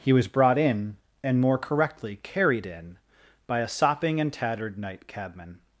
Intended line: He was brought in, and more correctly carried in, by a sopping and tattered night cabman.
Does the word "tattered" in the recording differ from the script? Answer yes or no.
no